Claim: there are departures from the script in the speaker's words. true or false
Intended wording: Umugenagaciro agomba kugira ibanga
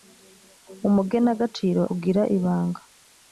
true